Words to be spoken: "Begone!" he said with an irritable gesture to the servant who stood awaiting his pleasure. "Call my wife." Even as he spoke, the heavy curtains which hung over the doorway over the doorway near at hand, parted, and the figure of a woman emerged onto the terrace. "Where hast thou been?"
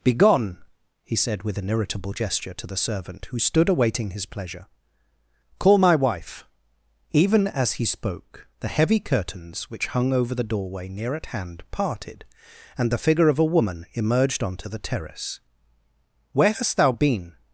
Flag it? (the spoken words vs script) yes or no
yes